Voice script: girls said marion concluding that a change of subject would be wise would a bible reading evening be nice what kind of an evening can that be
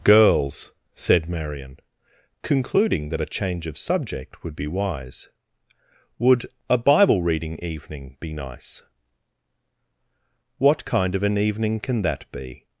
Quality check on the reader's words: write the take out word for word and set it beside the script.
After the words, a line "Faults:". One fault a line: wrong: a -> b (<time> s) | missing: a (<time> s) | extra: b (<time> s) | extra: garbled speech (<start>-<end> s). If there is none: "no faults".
girls said marion concluding that a change of subject would be wise would a bible reading evening be nice what kind of an evening can that be
Faults:
no faults